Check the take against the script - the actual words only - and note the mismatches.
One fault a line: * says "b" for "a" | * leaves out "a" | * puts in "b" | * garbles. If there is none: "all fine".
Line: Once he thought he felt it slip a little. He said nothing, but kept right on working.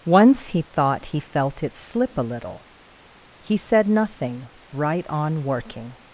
* leaves out "but kept"